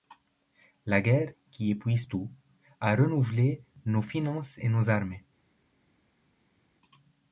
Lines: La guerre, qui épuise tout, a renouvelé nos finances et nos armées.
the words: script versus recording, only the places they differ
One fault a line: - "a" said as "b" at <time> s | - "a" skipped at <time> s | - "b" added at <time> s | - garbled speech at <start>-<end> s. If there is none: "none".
none